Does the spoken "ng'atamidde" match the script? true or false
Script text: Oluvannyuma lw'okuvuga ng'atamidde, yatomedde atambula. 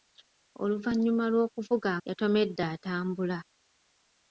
false